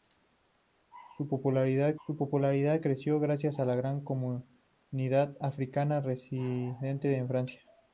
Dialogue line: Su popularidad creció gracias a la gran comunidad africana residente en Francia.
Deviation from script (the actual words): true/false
true